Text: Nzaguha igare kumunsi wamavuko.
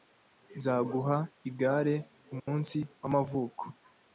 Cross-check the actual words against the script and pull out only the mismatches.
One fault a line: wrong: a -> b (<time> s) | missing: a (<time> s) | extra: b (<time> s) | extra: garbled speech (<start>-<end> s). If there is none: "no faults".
no faults